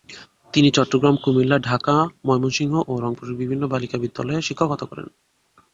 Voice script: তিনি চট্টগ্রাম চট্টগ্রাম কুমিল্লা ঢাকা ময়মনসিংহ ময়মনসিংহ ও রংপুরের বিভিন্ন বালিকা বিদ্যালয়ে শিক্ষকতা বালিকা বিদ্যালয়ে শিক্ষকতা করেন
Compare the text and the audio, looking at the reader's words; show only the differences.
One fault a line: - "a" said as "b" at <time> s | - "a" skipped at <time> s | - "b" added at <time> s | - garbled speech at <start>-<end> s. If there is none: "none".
- "চট্টগ্রাম" skipped at 1.1 s
- "ময়মনসিংহ" skipped at 2.7 s
- "বালিকা বিদ্যালয়ে শিক্ষকতা" skipped at 4.8 s